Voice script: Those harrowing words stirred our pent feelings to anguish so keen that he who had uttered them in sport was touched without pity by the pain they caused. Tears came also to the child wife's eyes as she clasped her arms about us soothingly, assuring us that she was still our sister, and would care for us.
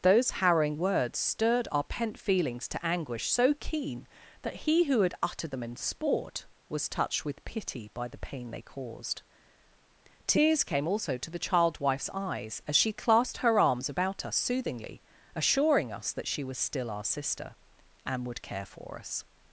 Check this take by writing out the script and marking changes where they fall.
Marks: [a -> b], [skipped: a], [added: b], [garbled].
Those harrowing words stirred our pent feelings to anguish so keen that he who had uttered them in sport was touched [without -> with] pity by the pain they caused. Tears came also to the child wife's eyes as she clasped her arms about us soothingly, assuring us that she was still our sister, and would care for us.